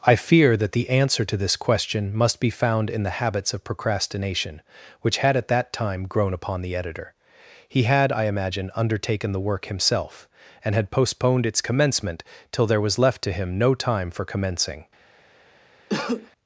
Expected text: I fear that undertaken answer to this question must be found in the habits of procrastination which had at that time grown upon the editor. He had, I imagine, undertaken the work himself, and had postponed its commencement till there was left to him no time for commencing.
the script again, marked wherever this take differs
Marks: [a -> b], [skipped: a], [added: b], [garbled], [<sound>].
I fear that [undertaken -> the] answer to this question must be found in the habits of procrastination which had at that time grown upon the editor. He had, I imagine, undertaken the work himself, and had postponed its commencement till there was left to him no time for commencing. [cough]